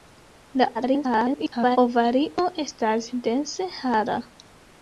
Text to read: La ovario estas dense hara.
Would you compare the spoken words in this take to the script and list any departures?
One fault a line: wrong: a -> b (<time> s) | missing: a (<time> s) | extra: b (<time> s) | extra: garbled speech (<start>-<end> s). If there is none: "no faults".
extra: garbled speech (0.7-1.8 s)